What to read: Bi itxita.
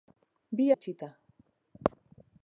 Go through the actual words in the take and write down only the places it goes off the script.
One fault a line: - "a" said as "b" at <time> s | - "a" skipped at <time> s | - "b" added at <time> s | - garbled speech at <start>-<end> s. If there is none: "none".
none